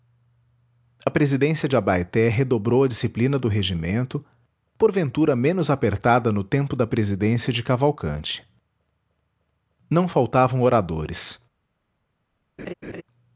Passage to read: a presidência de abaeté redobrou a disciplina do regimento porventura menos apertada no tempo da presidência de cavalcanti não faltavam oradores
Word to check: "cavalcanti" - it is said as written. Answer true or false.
true